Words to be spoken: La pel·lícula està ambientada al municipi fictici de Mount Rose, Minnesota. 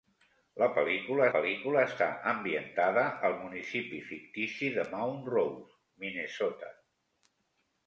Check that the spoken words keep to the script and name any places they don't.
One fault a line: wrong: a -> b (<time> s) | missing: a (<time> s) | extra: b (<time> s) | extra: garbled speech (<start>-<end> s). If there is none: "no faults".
extra: pel·lícula (1.3 s)